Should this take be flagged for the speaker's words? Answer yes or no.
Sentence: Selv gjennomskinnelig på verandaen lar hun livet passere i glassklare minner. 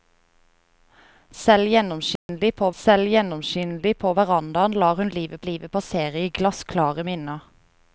yes